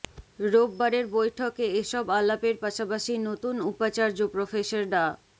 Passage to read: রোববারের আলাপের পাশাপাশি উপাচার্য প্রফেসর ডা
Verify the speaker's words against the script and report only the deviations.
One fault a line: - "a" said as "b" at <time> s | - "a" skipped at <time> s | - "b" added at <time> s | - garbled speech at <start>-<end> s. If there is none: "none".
- "বৈঠকে এসব" added at 1.1 s
- "নতুন" added at 3.3 s